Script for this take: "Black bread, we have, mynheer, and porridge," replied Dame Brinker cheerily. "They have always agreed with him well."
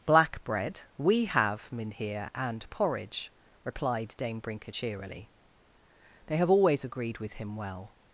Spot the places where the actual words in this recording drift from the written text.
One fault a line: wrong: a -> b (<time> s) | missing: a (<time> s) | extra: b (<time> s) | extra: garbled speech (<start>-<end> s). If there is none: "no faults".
no faults